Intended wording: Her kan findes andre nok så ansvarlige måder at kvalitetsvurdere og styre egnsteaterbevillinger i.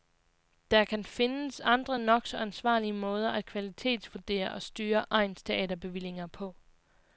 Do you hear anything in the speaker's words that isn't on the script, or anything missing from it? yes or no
yes